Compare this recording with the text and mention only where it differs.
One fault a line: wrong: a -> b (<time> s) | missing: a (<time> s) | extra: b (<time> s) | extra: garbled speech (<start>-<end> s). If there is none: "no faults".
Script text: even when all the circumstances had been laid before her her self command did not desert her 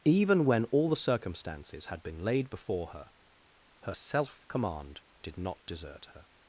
no faults